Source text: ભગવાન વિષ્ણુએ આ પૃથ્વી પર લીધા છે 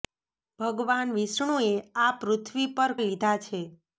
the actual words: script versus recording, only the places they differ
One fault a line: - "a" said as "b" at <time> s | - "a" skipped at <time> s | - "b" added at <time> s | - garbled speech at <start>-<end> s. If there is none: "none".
none